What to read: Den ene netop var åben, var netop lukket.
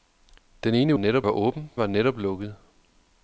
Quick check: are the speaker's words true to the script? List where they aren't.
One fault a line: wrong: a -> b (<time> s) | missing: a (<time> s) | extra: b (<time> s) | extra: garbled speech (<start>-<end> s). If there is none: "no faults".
no faults